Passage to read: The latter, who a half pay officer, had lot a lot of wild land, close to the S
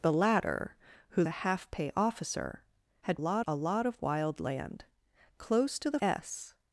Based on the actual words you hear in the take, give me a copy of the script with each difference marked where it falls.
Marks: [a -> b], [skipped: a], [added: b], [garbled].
The latter, who a half pay officer, had lot a lot of wild land, close to the S